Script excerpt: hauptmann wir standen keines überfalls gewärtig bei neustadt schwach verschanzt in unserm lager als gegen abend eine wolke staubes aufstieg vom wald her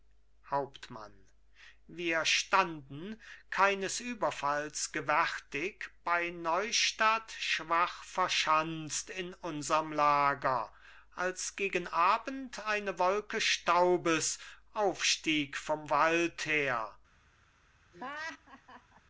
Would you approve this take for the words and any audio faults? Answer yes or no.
no